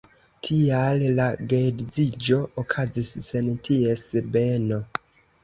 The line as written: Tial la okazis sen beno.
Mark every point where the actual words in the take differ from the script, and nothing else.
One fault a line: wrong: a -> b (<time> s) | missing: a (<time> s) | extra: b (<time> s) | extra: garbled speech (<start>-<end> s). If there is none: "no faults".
extra: geedziĝo (1.5 s)
extra: ties (3.7 s)